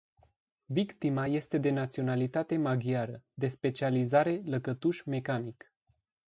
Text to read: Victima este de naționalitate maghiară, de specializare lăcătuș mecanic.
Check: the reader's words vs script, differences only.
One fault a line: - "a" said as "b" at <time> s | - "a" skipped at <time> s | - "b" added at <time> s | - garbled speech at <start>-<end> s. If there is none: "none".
none